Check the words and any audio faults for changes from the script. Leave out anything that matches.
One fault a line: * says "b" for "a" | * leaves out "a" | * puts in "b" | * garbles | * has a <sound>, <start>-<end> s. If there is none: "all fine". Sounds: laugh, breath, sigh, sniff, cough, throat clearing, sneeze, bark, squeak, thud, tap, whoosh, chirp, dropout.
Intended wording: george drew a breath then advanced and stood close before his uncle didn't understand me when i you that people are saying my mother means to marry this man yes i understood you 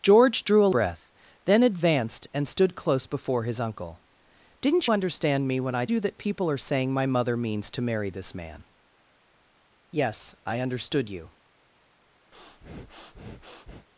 * has a breath, 12.3-13.9 s